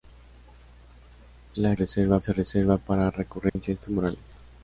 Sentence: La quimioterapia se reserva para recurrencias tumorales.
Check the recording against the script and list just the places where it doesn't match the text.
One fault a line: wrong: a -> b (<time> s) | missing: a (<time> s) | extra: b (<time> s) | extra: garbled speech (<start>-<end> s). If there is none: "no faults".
wrong: quimioterapia -> reserva (1.7 s)